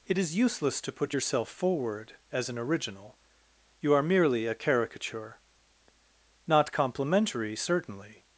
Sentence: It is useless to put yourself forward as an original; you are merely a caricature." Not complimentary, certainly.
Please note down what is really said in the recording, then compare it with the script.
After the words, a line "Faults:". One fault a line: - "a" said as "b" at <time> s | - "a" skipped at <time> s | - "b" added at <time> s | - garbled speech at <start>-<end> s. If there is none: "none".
It is useless to put yourself forward as an original; you are merely a caricature." Not complimentary, certainly.
Faults:
none